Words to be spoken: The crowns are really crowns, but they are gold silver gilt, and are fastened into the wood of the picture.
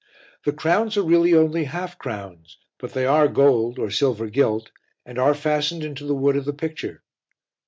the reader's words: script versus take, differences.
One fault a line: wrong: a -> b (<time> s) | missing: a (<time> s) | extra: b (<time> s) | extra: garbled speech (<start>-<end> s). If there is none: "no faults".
extra: only half (1.4 s)
extra: or (3.8 s)